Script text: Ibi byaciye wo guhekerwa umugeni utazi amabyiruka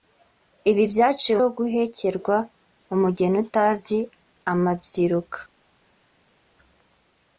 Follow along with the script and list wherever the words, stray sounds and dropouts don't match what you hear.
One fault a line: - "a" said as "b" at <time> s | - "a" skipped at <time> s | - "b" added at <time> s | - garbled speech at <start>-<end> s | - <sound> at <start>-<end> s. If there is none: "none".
none